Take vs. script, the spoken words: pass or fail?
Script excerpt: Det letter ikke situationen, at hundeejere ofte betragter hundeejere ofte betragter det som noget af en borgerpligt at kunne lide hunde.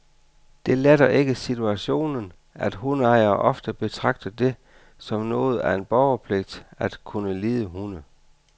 fail